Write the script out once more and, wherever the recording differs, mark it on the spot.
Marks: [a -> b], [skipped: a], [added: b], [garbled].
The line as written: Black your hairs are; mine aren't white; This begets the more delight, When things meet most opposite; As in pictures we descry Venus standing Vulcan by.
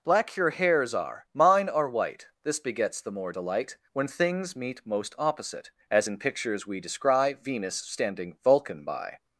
Black your hairs are; mine [aren't -> are] white; This begets the more delight, When things meet most opposite; As in pictures we descry Venus standing Vulcan by.